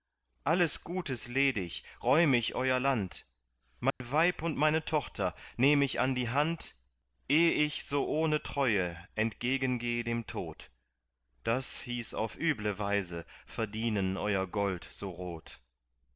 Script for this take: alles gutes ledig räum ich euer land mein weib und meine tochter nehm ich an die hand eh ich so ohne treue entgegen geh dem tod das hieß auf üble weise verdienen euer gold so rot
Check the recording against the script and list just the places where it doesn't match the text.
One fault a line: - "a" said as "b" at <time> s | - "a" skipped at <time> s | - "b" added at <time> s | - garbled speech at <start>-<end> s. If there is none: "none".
none